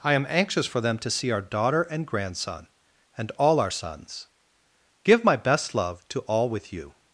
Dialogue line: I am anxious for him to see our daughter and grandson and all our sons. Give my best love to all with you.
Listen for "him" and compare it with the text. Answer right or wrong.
wrong